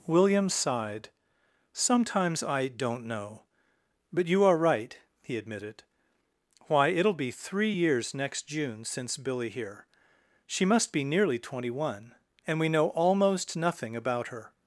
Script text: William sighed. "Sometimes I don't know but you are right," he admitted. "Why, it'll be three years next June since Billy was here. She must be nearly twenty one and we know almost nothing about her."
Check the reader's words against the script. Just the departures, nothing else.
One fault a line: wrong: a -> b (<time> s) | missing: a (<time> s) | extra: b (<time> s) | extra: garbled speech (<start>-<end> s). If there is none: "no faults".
missing: was (9.5 s)